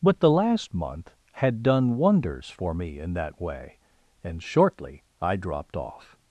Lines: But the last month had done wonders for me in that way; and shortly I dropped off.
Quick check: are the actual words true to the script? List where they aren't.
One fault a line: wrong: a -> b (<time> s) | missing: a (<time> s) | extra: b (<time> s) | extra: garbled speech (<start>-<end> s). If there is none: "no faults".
no faults